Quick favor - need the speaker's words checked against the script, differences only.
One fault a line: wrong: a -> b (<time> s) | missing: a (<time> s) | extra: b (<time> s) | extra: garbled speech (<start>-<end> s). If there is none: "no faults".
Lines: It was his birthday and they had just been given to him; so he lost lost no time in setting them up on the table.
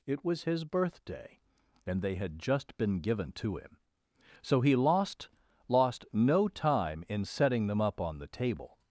no faults